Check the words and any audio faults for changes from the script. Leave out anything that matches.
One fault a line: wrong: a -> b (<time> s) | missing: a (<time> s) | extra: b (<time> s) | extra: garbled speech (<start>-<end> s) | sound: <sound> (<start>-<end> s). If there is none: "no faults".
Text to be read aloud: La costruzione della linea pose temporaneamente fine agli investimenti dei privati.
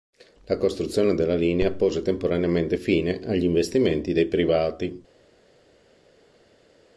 no faults